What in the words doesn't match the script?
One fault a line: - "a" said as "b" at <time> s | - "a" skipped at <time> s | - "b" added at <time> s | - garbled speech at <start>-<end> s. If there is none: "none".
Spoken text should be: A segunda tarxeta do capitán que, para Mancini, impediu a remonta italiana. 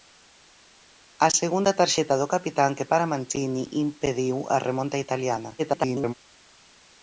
- garbled speech at 5.6-6.1 s